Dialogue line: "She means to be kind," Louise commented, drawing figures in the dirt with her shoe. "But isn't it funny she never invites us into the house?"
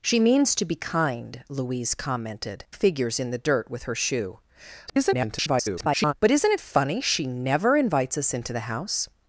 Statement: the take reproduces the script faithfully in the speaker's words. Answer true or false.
false